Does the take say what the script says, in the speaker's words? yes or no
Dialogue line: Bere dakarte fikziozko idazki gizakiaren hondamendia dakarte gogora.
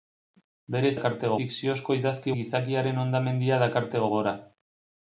yes